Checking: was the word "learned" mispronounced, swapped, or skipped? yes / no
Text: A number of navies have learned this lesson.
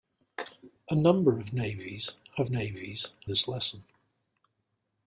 yes